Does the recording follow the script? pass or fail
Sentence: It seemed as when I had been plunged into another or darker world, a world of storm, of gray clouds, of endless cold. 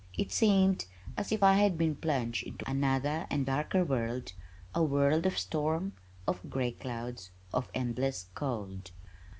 fail